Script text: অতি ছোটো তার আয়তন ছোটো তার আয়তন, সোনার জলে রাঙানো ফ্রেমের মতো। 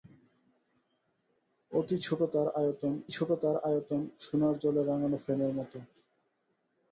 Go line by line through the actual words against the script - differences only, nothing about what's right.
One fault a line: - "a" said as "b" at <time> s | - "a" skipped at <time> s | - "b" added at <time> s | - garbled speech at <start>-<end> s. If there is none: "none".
none